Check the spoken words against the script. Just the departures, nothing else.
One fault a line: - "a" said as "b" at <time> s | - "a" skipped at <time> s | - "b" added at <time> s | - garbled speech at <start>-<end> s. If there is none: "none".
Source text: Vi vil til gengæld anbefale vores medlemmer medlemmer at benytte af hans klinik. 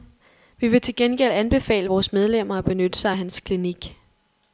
- "medlemmer" skipped at 2.5 s
- "sig" added at 3.0 s